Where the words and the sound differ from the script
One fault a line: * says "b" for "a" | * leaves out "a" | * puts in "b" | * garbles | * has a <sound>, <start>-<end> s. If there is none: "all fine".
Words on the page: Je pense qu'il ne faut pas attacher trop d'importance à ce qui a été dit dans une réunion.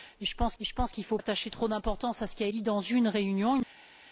* puts in "je pense"
* leaves out "pas"
* leaves out "été"